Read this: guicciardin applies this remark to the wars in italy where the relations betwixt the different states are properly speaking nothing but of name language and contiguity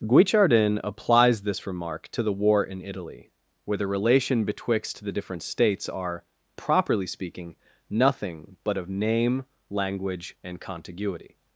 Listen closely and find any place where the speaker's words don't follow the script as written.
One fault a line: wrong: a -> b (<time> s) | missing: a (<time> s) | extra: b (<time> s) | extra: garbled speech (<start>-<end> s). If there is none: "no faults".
wrong: wars -> war (2.3 s)
wrong: relations -> relation (3.9 s)